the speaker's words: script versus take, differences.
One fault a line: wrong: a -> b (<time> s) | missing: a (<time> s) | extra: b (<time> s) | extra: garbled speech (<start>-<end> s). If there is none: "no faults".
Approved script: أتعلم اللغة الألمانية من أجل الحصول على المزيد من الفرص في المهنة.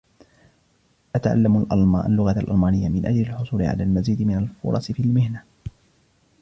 no faults